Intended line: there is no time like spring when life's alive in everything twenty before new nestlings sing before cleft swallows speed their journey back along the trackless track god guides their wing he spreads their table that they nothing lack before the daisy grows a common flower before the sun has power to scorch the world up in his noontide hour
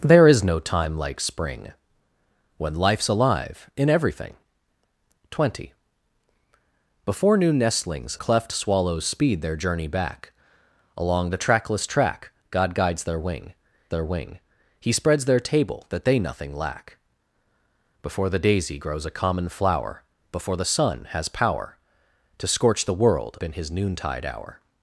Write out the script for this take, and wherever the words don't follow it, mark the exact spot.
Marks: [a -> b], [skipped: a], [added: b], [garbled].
there is no time like spring when life's alive in everything twenty before new nestlings [skipped: sing before] cleft swallows speed their journey back along the trackless track god guides their wing [added: their wing] he spreads their table that they nothing lack before the daisy grows a common flower before the sun has power to scorch the world [skipped: up] in his noontide hour